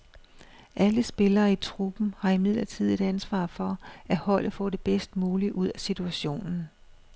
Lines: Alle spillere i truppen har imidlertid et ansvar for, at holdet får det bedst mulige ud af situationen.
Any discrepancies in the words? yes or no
no